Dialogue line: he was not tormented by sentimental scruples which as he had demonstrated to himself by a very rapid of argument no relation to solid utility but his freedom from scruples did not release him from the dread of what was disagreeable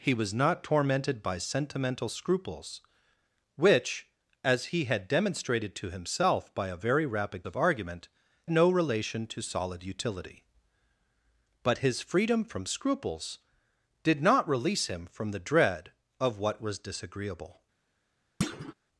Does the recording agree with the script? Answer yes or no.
yes